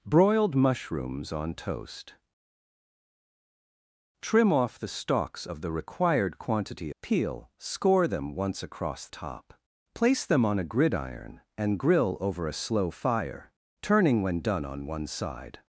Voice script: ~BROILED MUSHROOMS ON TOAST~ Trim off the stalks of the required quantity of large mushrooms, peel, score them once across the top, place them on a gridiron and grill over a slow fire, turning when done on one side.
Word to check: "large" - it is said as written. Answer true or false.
false